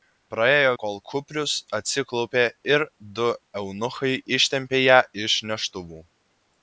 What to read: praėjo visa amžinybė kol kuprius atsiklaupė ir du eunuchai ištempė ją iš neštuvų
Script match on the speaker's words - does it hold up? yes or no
no